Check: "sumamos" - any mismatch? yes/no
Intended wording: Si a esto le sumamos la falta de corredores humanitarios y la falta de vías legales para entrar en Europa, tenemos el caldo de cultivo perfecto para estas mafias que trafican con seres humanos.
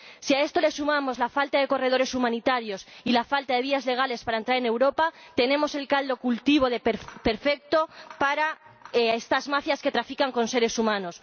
no